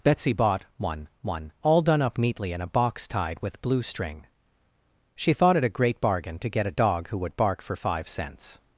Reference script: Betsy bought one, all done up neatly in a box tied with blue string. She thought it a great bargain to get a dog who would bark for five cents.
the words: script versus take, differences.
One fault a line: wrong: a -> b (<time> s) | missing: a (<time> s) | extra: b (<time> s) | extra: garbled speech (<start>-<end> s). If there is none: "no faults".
extra: one (1.2 s)